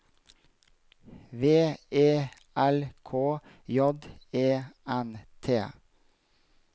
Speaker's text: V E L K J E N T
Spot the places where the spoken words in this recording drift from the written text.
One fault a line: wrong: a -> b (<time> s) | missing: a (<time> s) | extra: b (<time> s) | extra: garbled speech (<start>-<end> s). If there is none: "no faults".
no faults